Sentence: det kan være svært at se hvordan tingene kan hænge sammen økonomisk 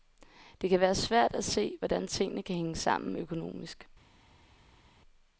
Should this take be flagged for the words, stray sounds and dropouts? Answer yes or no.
no